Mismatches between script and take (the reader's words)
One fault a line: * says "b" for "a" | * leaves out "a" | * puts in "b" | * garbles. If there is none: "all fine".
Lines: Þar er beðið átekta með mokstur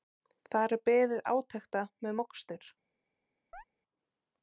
all fine